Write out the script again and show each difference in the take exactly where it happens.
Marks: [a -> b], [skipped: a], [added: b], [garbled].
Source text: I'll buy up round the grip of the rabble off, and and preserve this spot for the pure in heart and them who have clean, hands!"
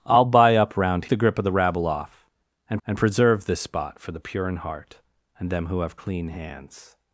I'll buy up round the grip of the rabble off, and and preserve this spot for the pure in heart and them who have clean, hands!"